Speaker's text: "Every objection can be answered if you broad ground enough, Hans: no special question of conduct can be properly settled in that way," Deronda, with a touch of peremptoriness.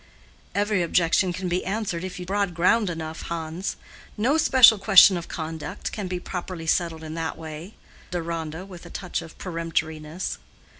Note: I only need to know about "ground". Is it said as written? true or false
true